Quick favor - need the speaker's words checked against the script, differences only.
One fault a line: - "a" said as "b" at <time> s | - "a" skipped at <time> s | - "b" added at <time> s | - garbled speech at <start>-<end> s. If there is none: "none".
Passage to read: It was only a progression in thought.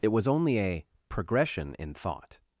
none